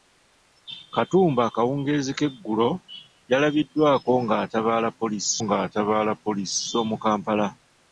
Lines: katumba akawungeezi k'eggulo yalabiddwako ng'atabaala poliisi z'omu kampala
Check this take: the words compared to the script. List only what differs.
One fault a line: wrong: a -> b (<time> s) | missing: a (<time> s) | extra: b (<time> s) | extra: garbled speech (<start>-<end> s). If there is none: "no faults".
extra: ng'atabaala poliisi (5.4 s)